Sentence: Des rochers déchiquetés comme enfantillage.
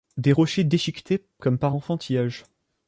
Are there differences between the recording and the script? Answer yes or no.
yes